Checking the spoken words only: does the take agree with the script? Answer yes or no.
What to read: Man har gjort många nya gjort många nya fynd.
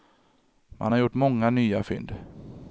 no